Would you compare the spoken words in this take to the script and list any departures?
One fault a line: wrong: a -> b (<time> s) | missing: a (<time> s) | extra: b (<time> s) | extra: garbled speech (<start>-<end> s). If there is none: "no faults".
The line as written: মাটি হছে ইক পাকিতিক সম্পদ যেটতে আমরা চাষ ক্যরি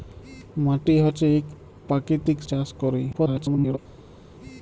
missing: সম্পদ যেটতে আমরা (2.4 s)
extra: garbled speech (3.1-3.8 s)